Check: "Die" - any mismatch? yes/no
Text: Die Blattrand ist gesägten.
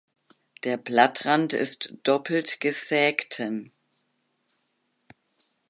yes